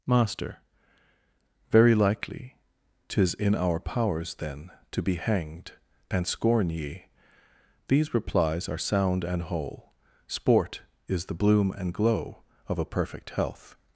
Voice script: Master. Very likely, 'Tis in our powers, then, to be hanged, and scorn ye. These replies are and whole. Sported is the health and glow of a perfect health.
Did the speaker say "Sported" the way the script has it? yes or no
no